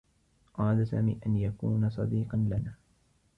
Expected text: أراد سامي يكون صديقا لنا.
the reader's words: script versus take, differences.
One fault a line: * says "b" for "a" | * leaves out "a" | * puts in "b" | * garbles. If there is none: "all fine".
* puts in "أن"